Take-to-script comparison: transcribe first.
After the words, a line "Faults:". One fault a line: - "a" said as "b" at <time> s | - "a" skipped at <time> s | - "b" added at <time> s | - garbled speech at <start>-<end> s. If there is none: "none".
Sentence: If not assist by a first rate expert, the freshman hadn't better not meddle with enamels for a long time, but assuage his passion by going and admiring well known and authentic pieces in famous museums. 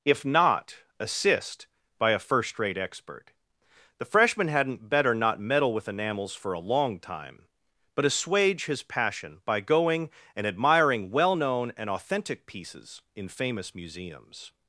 If not assist by a first rate expert, the freshman hadn't better not meddle with enamels for a long time, but assuage his passion by going and admiring well known and authentic pieces in famous museums.
Faults:
none